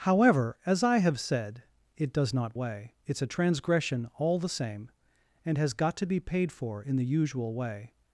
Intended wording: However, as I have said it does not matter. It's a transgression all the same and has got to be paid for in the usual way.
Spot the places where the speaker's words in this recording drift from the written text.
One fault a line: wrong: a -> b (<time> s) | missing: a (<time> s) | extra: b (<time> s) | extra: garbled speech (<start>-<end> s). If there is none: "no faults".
wrong: matter -> way (2.5 s)